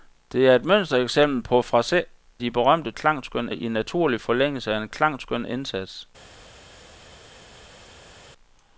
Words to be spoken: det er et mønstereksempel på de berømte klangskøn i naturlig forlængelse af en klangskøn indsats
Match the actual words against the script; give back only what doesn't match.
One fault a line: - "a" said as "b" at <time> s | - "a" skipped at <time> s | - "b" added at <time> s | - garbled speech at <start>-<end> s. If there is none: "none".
none